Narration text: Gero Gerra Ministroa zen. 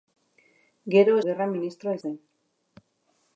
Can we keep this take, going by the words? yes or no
yes